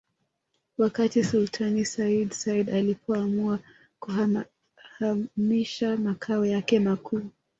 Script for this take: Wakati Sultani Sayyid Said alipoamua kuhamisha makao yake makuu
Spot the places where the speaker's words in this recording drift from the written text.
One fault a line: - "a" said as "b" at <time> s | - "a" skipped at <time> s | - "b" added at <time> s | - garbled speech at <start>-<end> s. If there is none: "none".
none